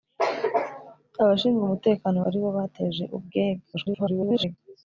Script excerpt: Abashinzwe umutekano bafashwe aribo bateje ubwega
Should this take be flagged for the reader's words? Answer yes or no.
yes